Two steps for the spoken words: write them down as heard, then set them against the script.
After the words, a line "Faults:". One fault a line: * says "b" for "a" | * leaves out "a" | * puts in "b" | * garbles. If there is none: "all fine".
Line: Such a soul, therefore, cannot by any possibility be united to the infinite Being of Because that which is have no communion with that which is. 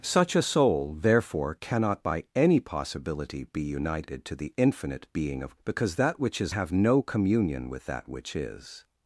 Such a soul, therefore, cannot by any possibility be united to the infinite Being of Because that which is have no communion with that which is.
Faults:
all fine